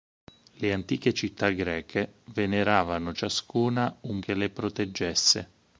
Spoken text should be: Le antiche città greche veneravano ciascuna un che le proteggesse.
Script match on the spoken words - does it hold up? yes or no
yes